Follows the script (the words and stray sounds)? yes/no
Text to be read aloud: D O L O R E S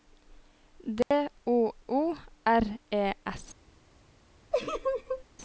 no